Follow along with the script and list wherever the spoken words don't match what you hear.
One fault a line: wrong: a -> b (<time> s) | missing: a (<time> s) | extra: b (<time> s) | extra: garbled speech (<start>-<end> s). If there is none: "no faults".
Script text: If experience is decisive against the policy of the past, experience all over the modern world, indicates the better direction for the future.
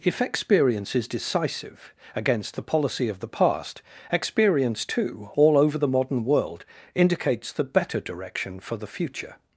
extra: too (4.8 s)